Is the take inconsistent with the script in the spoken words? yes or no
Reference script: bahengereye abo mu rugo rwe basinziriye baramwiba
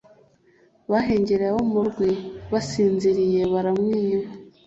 yes